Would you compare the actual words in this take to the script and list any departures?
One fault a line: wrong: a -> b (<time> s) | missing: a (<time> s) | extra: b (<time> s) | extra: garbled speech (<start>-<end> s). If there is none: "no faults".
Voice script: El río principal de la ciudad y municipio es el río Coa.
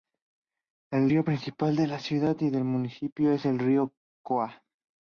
extra: del (2.5 s)